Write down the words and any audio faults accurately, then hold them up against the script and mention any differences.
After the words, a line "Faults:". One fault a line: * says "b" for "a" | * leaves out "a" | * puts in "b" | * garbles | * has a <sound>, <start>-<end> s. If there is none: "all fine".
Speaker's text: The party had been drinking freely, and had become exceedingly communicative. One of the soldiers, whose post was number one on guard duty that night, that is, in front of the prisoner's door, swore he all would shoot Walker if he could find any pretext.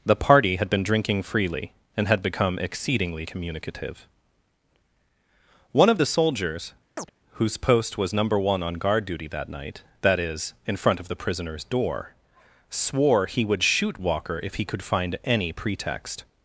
The party had been drinking freely, and had become exceedingly communicative. One of the soldiers, whose post was number one on guard duty that night, that is, in front of the prisoner's door, swore he would shoot Walker if he could find any pretext.
Faults:
* has a chirp, 7.0-7.1 s
* leaves out "all"